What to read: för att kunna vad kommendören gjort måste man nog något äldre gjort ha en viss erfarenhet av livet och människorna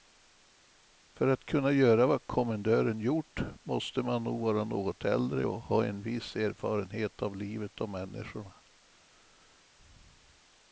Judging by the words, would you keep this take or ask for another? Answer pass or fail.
fail